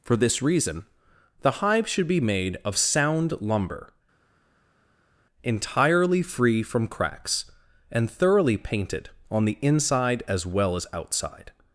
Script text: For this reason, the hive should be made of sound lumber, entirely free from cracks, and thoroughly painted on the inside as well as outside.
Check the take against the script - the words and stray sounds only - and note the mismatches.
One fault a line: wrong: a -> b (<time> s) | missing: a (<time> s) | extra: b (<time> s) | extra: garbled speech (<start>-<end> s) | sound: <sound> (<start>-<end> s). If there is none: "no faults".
no faults